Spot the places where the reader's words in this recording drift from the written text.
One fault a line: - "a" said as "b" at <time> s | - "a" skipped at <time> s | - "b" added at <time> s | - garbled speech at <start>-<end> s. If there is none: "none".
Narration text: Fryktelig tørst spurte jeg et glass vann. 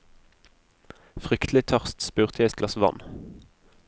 none